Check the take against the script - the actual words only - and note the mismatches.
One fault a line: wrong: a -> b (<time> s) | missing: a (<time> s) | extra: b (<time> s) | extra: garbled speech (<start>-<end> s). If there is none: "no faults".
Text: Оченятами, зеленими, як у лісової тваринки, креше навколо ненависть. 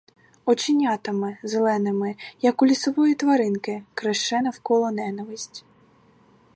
no faults